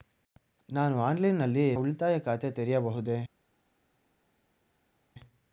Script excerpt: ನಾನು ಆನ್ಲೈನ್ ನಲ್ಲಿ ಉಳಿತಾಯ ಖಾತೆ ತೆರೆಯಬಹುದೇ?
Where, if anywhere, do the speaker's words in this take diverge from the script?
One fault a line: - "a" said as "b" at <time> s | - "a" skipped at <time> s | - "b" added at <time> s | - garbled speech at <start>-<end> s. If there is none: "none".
none